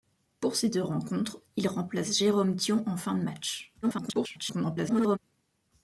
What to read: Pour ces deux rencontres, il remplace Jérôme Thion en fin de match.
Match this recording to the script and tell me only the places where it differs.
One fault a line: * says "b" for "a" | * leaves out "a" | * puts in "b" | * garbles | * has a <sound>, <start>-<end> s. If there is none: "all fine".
* garbles